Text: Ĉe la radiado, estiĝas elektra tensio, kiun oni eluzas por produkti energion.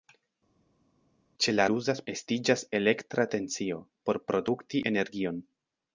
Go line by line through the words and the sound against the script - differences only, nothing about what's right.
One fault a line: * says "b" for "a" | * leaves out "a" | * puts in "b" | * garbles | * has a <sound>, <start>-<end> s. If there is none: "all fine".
* says "eluzas" for "radiado"
* leaves out "kiun oni eluzas"